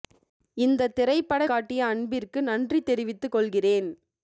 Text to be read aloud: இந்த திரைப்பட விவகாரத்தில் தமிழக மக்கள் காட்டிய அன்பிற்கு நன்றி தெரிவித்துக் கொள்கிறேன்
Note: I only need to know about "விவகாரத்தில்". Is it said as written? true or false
false